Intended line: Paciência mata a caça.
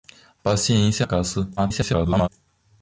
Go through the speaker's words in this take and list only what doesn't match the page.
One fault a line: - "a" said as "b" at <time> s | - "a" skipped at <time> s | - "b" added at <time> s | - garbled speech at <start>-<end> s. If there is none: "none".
- "mata" skipped at 1.1 s
- garbled speech at 1.6-2.3 s